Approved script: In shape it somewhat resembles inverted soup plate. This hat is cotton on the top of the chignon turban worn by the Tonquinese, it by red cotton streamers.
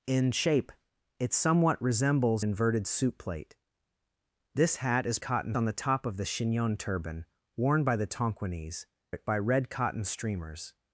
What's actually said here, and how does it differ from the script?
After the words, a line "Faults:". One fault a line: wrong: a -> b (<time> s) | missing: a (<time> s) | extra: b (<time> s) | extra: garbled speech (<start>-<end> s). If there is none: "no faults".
In shape it somewhat resembles inverted soup plate. This hat is cotton on the top of the chignon turban worn by the Tonquinese, it by red cotton streamers.
Faults:
no faults